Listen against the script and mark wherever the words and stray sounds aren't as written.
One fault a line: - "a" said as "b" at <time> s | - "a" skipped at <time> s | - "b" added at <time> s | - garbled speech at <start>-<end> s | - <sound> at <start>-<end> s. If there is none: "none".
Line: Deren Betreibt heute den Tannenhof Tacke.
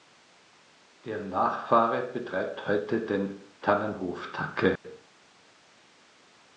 - "Nachfahre" added at 1.3 s
- dropout at 4.8-4.8 s